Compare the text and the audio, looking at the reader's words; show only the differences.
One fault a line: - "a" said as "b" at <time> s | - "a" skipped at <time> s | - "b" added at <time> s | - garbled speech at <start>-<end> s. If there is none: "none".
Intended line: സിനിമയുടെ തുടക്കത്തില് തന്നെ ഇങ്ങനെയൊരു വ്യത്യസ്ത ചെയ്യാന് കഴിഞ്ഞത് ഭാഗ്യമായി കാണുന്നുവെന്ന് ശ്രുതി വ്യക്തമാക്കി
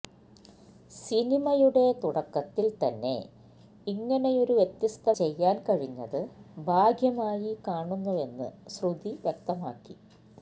none